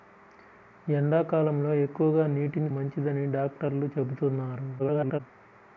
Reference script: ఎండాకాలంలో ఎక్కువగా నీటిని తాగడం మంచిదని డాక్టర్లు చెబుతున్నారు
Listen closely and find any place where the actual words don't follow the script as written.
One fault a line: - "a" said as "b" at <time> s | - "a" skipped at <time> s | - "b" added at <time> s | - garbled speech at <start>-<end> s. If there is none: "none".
- "తాగడం" skipped at 2.7 s
- garbled speech at 4.8-5.2 s